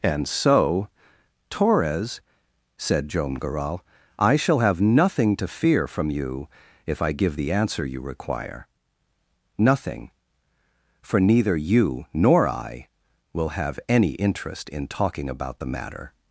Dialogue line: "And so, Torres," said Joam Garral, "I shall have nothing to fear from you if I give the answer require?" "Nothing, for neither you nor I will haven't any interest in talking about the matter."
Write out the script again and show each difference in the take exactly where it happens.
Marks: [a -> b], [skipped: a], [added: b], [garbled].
"And so, Torres," said Joam Garral, "I shall have nothing to fear from you if I give the answer [added: you] require?" "Nothing, for neither you nor I will [haven't -> have] any interest in talking about the matter."